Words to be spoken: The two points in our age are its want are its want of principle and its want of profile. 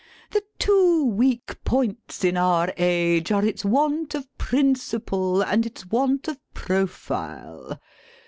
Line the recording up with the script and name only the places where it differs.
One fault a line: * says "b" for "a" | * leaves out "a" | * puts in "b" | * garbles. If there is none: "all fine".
* puts in "weak"
* leaves out "are its want"